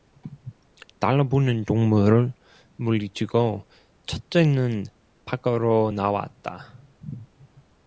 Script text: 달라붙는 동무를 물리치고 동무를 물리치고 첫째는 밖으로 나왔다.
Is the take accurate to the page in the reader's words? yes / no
no